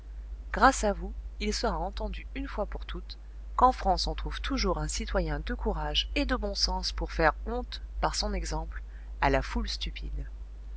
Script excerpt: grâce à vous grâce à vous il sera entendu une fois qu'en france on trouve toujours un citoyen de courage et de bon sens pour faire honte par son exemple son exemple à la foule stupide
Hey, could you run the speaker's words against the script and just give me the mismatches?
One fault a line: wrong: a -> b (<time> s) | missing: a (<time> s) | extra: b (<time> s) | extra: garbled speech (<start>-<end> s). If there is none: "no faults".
missing: grâce à vous (1.1 s)
extra: pour toutes (2.7 s)
missing: son exemple (8.8 s)